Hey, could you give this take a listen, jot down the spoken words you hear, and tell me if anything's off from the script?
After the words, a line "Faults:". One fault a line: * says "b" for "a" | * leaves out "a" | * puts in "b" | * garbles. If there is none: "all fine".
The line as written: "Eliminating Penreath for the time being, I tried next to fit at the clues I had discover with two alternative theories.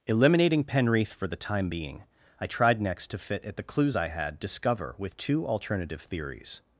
"Eliminating Penreath for the time being, I tried next to fit at the clues I had discover with two alternative theories.
Faults:
all fine